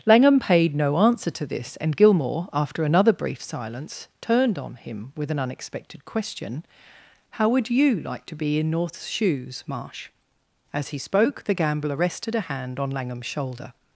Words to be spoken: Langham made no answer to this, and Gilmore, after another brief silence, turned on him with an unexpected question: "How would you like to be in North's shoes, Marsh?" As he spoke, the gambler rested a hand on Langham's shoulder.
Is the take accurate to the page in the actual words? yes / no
no